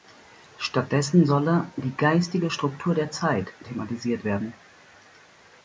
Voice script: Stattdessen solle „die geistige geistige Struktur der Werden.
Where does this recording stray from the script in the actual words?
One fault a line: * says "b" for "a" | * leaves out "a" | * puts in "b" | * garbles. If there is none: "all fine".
* leaves out "geistige"
* puts in "Zeit thematisiert"